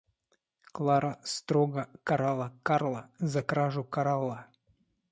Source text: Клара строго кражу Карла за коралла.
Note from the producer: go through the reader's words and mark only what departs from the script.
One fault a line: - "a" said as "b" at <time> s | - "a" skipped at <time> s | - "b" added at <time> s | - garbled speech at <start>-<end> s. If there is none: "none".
- "кражу" said as "карала" at 2.0 s
- "кражу" added at 3.4 s